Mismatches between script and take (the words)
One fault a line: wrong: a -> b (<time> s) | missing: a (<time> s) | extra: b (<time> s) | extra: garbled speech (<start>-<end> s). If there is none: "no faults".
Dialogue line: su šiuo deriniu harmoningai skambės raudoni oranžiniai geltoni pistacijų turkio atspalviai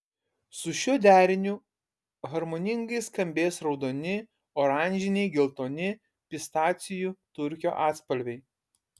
no faults